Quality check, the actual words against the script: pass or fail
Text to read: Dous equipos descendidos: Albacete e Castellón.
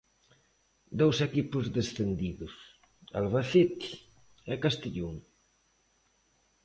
pass